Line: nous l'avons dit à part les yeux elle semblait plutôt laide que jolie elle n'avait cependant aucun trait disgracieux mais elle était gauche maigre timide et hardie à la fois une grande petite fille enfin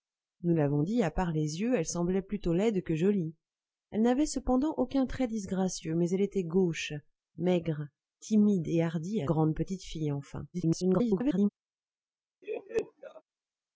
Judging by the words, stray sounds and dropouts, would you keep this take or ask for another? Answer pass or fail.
fail